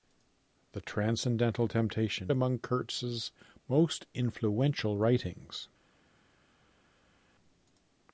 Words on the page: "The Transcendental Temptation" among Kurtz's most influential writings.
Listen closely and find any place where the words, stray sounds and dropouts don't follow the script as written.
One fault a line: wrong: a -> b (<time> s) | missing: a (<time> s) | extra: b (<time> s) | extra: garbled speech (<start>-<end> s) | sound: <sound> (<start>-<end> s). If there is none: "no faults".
no faults